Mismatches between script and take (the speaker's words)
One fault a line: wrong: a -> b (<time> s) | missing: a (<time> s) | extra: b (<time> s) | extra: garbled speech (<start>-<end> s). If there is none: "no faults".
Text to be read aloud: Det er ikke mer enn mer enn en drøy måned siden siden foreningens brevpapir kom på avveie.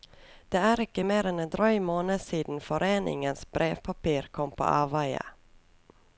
missing: mer enn (1.4 s)
missing: siden (2.6 s)